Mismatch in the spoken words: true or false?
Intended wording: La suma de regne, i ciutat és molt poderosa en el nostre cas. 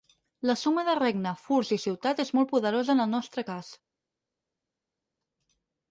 true